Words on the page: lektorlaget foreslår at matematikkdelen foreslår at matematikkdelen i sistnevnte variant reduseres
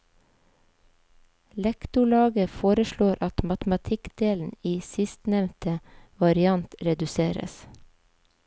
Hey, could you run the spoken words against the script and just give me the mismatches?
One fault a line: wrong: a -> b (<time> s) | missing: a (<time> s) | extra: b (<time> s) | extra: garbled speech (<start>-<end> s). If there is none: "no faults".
missing: foreslår at matematikkdelen (4.5 s)